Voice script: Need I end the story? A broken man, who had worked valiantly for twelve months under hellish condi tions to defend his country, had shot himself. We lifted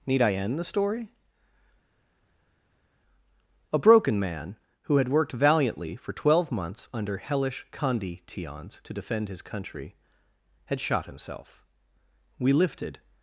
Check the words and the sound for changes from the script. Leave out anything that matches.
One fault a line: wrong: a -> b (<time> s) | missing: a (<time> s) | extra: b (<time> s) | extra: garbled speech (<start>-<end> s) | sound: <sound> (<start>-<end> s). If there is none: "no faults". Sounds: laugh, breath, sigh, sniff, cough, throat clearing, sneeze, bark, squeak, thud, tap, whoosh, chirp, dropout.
no faults